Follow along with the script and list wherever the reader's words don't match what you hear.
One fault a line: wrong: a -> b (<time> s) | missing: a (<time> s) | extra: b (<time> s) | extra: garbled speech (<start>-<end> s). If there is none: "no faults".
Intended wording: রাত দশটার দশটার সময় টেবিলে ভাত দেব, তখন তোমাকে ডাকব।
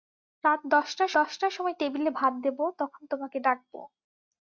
no faults